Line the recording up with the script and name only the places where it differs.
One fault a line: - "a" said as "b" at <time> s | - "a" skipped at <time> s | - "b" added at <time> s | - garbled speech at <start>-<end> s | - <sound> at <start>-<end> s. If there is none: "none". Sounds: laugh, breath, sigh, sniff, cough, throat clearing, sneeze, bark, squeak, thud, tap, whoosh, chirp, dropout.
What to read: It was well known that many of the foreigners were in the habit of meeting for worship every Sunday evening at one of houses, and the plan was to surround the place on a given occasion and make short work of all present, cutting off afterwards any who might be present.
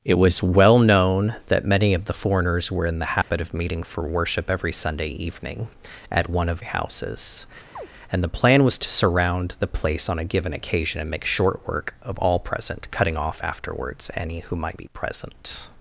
- dropout at 3.2-3.3 s
- chirp at 7.8-7.9 s